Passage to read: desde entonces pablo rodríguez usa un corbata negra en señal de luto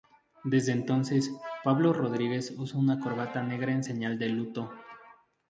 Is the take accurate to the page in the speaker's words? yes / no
no